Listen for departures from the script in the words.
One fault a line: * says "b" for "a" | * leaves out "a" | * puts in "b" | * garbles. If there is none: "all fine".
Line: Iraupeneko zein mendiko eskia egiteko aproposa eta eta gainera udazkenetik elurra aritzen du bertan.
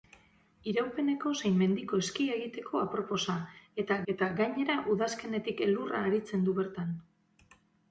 all fine